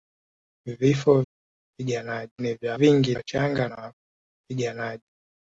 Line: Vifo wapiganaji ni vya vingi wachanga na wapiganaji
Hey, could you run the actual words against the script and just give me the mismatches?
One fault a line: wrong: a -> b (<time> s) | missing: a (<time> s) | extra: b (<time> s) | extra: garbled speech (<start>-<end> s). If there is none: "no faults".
no faults